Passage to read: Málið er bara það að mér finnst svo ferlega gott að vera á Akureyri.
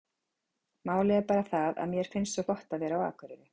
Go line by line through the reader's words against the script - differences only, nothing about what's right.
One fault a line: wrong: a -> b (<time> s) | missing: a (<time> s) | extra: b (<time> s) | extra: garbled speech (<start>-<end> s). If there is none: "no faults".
missing: ferlega (2.5 s)